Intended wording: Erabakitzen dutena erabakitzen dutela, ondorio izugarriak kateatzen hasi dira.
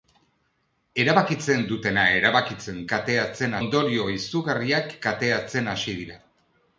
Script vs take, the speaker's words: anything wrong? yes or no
yes